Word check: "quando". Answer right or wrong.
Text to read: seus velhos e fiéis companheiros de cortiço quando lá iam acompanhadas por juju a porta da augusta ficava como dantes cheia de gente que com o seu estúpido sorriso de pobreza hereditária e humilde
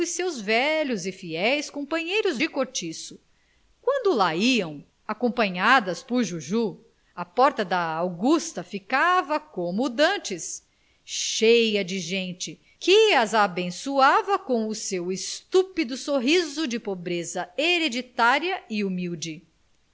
right